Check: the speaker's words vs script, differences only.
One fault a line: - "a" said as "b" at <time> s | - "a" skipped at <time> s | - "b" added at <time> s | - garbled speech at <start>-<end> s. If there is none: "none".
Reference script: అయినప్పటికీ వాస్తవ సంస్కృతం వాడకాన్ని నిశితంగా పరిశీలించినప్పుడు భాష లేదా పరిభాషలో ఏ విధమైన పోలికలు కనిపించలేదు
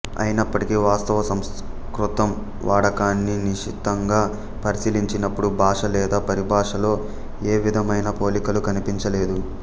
none